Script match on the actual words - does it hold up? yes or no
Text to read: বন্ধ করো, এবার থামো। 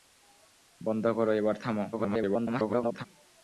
no